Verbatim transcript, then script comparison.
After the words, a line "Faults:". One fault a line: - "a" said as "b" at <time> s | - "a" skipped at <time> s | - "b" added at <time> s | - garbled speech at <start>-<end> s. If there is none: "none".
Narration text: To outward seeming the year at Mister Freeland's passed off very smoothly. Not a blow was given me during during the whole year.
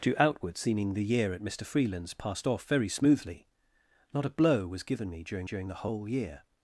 To outward seeming the year at Mister Freeland's passed off very smoothly. Not a blow was given me during during the whole year.
Faults:
none